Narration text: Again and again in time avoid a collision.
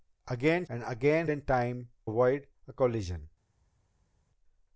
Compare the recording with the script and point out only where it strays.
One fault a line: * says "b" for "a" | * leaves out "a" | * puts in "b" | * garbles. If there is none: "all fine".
all fine